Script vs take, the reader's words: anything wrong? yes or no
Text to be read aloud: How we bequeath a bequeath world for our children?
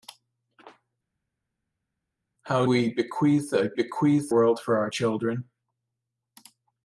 no